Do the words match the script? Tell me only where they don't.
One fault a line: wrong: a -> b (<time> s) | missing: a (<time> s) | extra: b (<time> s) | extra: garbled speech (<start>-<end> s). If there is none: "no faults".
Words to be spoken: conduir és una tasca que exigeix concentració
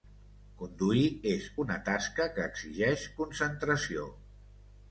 no faults